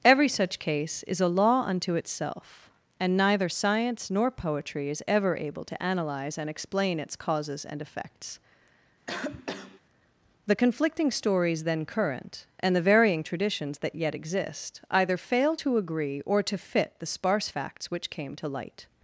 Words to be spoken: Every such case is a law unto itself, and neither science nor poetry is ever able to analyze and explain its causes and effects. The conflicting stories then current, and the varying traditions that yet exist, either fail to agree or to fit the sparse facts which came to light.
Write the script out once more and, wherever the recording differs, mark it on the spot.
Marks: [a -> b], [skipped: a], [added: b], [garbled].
Every such case is a law unto itself, and neither science nor poetry is ever able to analyze and explain its causes and effects. The conflicting stories then current, and the varying traditions that yet exist, either fail to agree or to fit the sparse facts which came to light.